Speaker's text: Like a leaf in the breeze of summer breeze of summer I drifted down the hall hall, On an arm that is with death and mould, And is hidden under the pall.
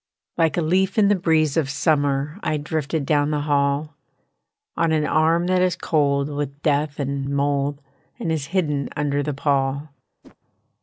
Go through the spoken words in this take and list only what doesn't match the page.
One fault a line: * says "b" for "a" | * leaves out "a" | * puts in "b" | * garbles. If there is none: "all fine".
* leaves out "breeze of summer"
* leaves out "hall"
* puts in "cold"